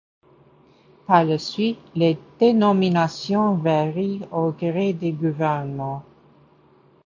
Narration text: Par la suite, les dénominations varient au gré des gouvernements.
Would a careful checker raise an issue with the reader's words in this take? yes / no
no